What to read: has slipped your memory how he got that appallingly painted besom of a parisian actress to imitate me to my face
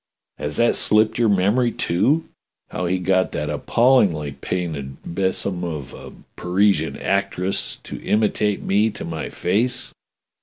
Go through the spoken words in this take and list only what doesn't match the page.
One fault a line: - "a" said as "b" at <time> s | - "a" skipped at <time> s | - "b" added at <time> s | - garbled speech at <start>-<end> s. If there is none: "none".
- "that" added at 0.6 s
- "too" added at 1.7 s